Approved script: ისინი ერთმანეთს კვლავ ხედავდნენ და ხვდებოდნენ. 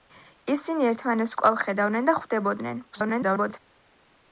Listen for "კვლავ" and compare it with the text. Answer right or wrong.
right